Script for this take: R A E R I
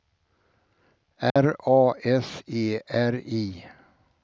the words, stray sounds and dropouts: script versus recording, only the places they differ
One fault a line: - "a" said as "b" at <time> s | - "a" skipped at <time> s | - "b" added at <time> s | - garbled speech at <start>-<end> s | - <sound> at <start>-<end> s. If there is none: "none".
- dropout at 1.3-1.4 s
- "S" added at 2.0 s